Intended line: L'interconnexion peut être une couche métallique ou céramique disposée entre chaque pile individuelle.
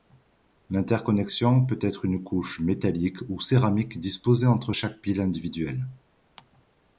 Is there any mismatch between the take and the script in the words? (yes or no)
no